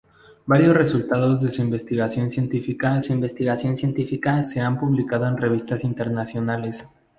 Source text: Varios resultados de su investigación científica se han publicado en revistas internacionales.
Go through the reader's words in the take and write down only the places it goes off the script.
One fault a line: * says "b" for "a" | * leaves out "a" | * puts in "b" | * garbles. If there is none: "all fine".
* puts in "su investigación científica"